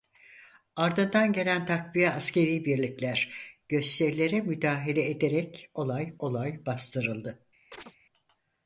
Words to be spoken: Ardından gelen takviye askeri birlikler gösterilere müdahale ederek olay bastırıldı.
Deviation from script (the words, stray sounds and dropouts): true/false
true